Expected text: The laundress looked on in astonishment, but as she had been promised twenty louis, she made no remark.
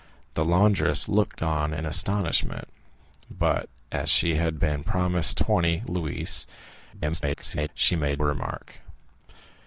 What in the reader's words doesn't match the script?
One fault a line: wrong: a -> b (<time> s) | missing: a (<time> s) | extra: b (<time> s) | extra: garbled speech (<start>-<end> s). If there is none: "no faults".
extra: garbled speech (6.9-7.7 s)
missing: no (8.2 s)